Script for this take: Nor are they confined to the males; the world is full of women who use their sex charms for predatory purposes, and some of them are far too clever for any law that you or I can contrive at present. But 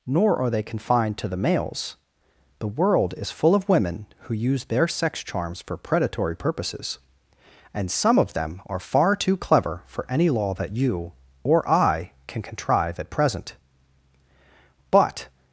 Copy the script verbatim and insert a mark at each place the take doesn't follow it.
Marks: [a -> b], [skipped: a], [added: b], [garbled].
Nor are they confined to the males; the world is full of women who use their sex charms for predatory purposes, and some of them are far too clever for any law that you or I can contrive at present. But